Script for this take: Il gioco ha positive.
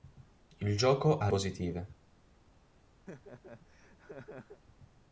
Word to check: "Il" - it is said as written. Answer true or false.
true